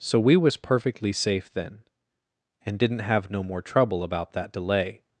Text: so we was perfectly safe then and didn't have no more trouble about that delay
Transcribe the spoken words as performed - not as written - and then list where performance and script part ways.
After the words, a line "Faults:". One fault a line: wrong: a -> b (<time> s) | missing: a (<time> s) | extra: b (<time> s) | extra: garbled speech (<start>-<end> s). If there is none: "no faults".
so we was perfectly safe then and didn't have no more trouble about that delay
Faults:
no faults